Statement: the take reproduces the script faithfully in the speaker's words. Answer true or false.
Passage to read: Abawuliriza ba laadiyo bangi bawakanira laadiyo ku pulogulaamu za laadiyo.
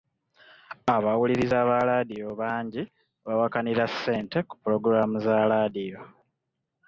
false